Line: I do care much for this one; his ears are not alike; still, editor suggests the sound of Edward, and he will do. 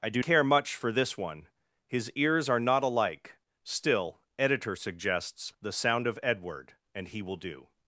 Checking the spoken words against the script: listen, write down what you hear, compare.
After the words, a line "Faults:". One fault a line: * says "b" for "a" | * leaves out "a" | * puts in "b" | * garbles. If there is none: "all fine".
I do care much for this one; his ears are not alike; still, editor suggests the sound of Edward, and he will do.
Faults:
all fine